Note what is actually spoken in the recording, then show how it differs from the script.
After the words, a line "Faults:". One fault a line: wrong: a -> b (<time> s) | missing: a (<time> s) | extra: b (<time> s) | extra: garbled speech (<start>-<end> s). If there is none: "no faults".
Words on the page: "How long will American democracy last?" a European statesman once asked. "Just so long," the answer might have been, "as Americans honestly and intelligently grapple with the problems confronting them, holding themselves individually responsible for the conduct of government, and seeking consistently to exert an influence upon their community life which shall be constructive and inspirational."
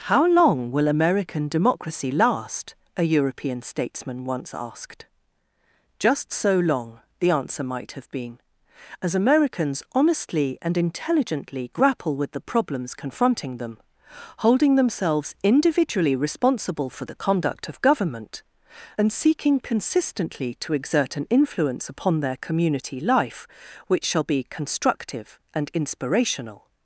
"How long will American democracy last?" a European statesman once asked. "Just so long," the answer might have been, "as Americans honestly and intelligently grapple with the problems confronting them, holding themselves individually responsible for the conduct of government, and seeking consistently to exert an influence upon their community life which shall be constructive and inspirational."
Faults:
no faults